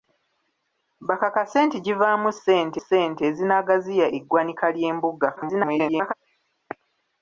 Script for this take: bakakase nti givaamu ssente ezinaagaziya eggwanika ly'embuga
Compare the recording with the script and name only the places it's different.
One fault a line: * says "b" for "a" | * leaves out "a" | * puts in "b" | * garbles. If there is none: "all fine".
* puts in "ssente"
* garbles